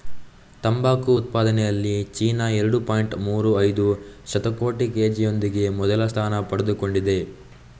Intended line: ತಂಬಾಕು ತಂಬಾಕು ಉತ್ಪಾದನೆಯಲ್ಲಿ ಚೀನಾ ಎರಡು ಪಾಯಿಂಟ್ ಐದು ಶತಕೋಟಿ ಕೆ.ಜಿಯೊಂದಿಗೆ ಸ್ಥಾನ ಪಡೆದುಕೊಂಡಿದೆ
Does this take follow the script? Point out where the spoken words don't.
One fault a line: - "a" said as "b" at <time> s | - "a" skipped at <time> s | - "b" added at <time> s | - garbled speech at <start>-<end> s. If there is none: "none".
- "ತಂಬಾಕು" skipped at 1.1 s
- "ಮೂರು" added at 3.3 s
- "ಮೊದಲ" added at 5.8 s